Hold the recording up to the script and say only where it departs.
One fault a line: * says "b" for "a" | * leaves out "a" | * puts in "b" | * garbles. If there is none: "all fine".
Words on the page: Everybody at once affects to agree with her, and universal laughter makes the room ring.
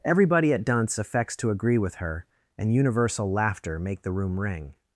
* says "dunce" for "once"
* says "make" for "makes"